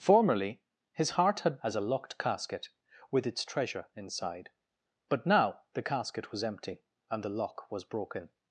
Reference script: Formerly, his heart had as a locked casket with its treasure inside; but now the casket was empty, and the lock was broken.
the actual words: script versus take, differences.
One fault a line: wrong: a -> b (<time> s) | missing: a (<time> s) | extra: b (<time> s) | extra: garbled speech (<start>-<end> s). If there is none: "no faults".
no faults